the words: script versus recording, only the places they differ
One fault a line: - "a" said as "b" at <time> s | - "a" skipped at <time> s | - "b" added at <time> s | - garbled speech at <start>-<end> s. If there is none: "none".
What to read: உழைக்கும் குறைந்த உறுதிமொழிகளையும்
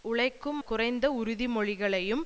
none